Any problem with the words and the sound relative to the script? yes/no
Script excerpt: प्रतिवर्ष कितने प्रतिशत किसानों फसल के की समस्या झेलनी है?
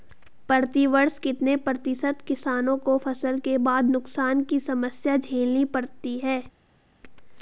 yes